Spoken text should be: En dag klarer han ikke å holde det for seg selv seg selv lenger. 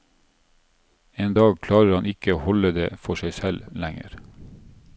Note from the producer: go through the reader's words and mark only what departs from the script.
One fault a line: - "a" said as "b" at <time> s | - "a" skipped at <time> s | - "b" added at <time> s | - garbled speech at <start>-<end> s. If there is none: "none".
- "seg selv" skipped at 3.7 s